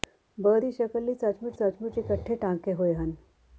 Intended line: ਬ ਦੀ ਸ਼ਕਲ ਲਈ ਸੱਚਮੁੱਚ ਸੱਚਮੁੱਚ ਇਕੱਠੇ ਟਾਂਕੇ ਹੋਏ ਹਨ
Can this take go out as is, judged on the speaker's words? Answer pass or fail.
pass